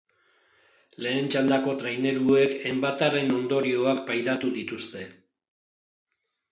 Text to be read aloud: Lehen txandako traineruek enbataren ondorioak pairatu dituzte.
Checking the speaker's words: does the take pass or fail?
pass